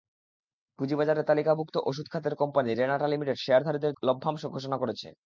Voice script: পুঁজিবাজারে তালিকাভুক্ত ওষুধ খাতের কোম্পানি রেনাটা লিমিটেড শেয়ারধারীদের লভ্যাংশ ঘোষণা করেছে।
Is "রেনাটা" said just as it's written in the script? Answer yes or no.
yes